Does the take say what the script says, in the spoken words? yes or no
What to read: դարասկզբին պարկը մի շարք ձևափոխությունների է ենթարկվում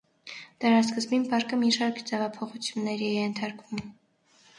yes